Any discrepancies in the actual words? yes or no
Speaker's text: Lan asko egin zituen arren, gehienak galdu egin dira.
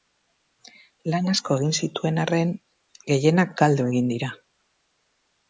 no